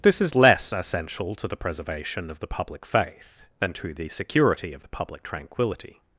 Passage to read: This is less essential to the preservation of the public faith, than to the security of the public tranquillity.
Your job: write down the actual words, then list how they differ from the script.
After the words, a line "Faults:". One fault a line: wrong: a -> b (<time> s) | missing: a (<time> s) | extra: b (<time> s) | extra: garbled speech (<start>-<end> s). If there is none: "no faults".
This is less essential to the preservation of the public faith, than to the security of the public tranquillity.
Faults:
no faults